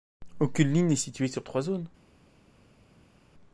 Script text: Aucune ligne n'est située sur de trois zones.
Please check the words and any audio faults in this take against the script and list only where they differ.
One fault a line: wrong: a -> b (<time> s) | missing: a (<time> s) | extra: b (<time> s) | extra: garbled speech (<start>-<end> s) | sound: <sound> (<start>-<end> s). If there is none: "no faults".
no faults